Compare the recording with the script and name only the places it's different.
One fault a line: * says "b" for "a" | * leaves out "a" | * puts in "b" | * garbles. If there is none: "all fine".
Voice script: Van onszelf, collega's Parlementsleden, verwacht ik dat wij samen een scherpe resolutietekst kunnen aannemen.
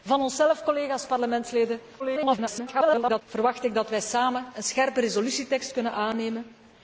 * garbles